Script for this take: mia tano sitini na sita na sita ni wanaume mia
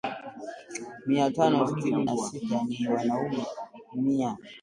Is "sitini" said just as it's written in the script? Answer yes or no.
yes